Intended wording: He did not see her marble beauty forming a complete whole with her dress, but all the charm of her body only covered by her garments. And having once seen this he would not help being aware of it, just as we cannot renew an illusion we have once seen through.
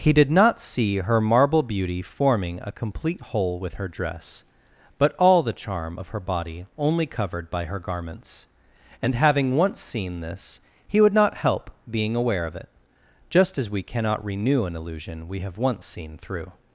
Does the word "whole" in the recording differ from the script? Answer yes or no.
no